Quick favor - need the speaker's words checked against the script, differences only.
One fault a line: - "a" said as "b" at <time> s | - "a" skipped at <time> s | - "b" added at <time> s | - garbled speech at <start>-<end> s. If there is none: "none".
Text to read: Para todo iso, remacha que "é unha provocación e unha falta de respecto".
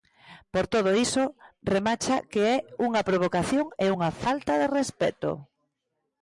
- "Para" said as "Por" at 0.5 s